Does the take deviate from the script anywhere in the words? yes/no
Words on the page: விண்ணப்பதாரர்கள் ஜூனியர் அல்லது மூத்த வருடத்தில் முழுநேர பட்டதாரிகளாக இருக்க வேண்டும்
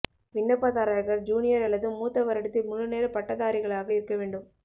no